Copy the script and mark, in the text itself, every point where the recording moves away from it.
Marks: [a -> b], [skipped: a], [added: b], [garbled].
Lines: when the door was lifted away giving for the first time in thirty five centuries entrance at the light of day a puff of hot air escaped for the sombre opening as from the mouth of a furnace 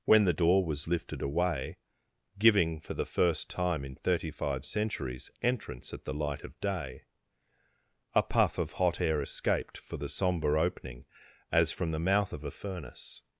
when the door was lifted away giving for the first time in thirty five centuries entrance at the light of day a puff of hot air escaped for the sombre opening as from the mouth of a furnace